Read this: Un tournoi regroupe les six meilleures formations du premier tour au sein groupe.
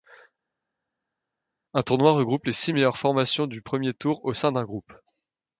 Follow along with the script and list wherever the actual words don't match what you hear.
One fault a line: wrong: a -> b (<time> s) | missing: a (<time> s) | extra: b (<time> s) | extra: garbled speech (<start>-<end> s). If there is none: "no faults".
extra: d'un (4.5 s)